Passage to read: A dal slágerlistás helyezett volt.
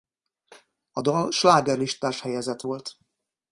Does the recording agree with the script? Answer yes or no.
yes